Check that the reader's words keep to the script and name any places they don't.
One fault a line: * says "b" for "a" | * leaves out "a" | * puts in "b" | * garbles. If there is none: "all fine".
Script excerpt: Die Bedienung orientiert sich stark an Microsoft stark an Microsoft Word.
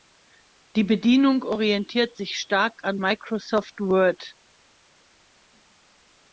* leaves out "stark an Microsoft"